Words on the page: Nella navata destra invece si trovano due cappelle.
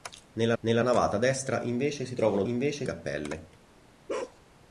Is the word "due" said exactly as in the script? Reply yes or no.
no